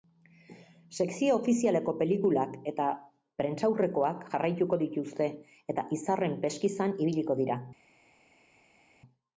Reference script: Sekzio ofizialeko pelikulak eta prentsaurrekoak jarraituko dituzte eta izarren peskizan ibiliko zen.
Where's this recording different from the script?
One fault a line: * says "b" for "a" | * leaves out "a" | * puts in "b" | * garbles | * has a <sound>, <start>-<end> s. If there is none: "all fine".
* says "dira" for "zen"